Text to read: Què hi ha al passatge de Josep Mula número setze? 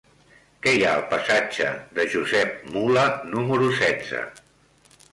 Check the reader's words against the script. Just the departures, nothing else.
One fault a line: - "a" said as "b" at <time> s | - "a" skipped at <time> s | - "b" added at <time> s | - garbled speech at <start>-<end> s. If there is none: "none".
none